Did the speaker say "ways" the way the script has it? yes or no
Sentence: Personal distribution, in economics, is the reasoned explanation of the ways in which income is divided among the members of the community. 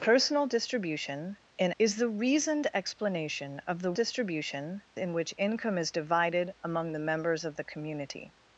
no